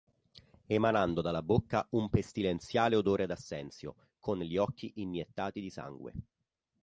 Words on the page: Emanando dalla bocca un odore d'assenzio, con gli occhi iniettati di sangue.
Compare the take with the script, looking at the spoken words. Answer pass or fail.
fail